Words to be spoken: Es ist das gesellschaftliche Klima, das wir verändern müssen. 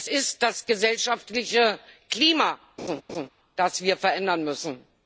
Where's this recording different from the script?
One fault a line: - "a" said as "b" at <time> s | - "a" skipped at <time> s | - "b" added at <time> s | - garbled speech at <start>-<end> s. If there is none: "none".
none